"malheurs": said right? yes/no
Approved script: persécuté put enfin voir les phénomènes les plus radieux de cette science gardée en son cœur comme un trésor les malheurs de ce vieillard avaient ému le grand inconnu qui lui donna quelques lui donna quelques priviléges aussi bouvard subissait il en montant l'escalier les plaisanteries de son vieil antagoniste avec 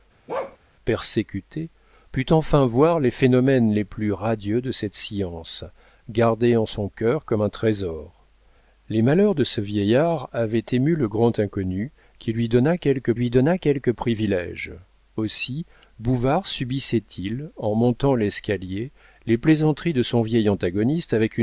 yes